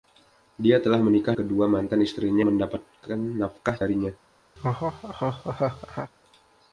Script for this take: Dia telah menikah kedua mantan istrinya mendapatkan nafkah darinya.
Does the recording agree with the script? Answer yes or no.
yes